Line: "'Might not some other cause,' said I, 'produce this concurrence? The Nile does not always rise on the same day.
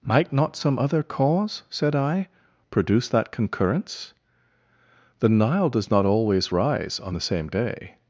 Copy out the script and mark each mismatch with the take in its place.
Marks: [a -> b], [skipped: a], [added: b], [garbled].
"'Might not some other cause,' said I, 'produce [this -> that] concurrence? The Nile does not always rise on the same day.